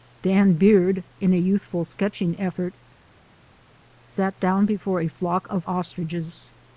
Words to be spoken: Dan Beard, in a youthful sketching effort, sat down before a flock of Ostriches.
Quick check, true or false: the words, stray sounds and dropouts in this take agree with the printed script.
true